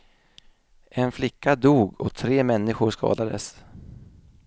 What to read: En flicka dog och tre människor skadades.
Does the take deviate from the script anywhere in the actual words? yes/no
no